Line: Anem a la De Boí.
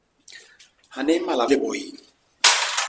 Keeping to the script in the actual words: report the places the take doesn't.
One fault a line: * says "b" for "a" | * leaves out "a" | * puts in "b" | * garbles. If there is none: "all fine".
all fine